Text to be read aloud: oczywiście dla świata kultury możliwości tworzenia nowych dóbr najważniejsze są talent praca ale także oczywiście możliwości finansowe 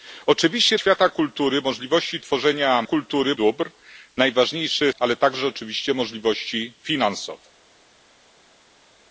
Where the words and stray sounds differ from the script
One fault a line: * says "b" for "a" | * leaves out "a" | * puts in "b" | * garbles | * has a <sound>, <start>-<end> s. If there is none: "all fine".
* leaves out "dla"
* says "kultury" for "nowych"
* leaves out "są talent praca"